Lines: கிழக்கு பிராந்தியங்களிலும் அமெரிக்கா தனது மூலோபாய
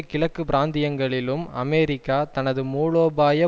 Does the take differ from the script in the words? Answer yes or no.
no